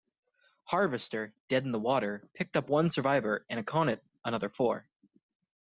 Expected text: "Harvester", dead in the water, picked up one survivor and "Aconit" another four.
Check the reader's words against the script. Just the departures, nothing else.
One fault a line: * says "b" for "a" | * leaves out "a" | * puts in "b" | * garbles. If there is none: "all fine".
all fine